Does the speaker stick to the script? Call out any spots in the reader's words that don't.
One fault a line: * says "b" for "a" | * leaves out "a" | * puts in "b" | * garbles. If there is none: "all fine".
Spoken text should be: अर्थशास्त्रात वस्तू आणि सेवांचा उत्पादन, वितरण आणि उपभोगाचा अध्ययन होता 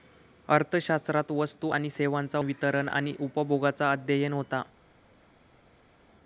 * leaves out "उत्पादन"